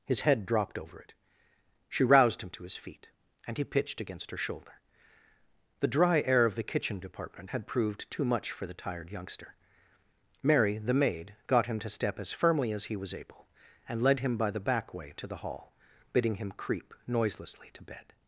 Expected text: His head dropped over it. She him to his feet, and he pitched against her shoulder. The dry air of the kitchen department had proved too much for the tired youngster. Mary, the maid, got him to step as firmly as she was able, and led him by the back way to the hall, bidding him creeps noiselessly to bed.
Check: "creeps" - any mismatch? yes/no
yes